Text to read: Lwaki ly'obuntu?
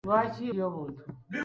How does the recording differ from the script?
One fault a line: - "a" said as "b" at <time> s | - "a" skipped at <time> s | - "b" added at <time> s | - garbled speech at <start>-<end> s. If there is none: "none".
none